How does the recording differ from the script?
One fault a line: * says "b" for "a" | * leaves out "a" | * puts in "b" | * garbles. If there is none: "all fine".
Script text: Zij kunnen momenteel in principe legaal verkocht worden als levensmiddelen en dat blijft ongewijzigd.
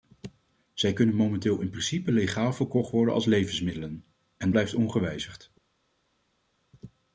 * leaves out "dat"